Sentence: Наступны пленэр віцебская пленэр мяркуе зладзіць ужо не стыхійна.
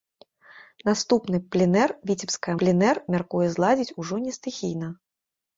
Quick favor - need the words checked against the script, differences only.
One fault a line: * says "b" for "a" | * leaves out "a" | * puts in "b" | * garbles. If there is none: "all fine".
all fine